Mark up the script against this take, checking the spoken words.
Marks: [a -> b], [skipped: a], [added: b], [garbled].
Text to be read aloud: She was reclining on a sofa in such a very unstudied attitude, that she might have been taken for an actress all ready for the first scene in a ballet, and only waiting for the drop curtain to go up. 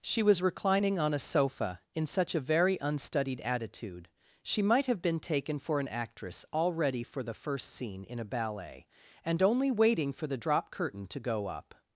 She was reclining on a sofa in such a very unstudied attitude, [skipped: that] she might have been taken for an actress all ready for the first scene in a ballet, and only waiting for the drop curtain to go up.